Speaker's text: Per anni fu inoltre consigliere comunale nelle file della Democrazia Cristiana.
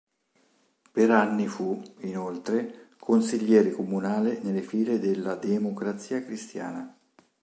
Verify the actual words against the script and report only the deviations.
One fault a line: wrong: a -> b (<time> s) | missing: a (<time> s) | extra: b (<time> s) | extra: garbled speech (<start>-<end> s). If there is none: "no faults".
no faults